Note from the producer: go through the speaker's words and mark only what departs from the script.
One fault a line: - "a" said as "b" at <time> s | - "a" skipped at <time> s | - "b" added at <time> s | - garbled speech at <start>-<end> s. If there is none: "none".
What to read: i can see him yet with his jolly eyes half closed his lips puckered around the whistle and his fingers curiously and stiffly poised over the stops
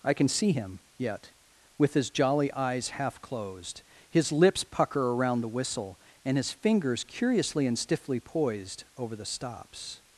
- "puckered" said as "pucker" at 4.6 s